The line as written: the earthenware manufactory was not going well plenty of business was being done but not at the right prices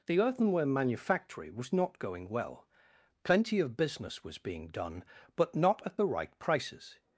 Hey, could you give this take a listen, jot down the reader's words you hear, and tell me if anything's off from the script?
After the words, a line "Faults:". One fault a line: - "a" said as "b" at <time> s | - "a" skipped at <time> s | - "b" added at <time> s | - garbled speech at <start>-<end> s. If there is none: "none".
the earthenware manufactory was not going well plenty of business was being done but not at the right prices
Faults:
none